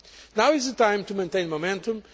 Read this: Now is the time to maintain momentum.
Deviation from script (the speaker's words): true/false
false